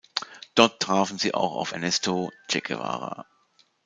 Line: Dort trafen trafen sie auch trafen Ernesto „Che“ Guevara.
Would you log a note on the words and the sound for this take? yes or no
yes